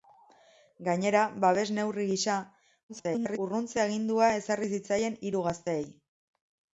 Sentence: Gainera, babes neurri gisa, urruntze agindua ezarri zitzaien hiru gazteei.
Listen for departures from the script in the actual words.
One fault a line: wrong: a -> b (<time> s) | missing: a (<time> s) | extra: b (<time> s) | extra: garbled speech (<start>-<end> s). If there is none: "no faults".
extra: garbled speech (2.9-3.4 s)